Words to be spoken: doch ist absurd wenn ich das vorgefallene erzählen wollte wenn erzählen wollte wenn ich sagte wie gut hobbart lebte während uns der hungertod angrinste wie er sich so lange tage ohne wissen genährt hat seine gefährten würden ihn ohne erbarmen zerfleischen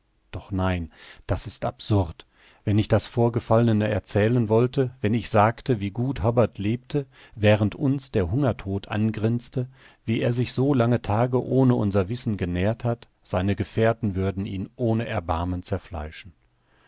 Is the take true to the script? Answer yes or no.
no